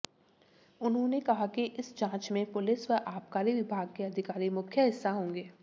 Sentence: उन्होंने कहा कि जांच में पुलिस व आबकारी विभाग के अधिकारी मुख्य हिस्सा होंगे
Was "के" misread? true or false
false